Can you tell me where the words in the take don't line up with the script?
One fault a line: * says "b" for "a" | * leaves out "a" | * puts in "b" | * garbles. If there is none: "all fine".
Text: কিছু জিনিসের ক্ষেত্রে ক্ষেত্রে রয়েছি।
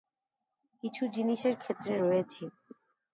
* leaves out "ক্ষেত্রে"